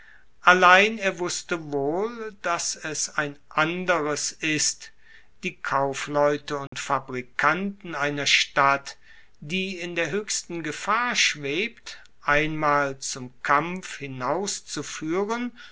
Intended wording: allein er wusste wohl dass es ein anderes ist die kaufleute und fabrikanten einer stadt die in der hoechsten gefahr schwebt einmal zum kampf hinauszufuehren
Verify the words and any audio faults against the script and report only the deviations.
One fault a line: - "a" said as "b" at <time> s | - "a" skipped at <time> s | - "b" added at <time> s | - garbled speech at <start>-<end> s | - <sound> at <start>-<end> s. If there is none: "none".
- dropout at 6.7-6.7 s